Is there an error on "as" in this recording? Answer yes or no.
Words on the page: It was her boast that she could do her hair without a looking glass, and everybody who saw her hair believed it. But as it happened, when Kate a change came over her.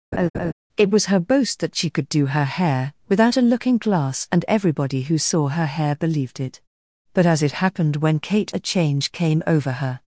no